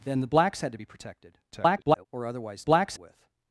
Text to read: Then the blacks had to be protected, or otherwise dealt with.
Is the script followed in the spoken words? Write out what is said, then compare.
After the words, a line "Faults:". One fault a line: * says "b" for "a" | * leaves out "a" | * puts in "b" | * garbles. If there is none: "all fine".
Then the blacks had to be protected, [garbled] or otherwise blacks with.
Faults:
* garbles
* says "blacks" for "dealt"